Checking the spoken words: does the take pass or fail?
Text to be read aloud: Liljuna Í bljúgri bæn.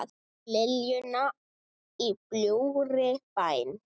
pass